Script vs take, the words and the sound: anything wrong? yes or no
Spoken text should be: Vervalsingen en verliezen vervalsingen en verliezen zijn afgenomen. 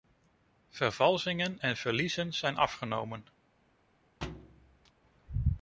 yes